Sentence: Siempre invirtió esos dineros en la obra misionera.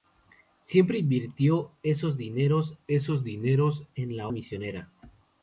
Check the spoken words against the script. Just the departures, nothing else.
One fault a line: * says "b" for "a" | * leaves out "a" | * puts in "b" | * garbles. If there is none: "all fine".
* puts in "esos dineros"
* leaves out "obra"